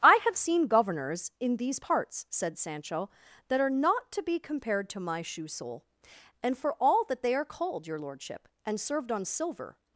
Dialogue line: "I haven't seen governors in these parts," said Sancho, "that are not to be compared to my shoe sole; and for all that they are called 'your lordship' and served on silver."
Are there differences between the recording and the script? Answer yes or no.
yes